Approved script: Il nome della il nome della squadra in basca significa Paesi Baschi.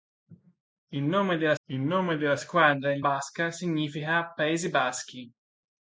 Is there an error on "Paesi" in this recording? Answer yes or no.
no